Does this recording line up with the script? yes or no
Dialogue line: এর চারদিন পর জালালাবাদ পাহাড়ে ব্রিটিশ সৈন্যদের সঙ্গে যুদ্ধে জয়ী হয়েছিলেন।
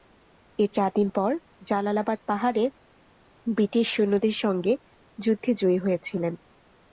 yes